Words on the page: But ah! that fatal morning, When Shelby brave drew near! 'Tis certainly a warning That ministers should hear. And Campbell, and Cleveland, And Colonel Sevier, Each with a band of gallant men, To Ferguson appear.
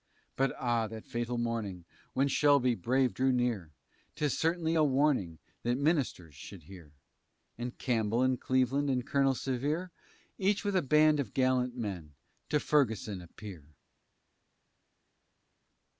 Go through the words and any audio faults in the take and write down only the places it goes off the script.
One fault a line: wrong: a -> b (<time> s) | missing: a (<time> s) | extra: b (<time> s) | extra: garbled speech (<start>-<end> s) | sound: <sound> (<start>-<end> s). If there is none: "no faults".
no faults